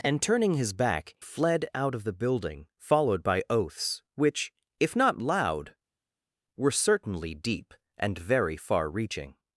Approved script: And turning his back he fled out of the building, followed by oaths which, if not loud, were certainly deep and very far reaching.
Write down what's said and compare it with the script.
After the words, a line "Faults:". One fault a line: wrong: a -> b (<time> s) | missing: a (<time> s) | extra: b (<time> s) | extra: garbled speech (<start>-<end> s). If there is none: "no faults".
And turning his back fled out of the building, followed by oaths which, if not loud, were certainly deep and very far reaching.
Faults:
missing: he (1.1 s)